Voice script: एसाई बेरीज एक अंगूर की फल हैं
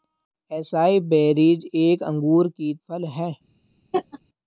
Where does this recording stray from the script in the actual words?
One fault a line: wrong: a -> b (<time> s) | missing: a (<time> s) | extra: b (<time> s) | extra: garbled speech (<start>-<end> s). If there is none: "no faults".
no faults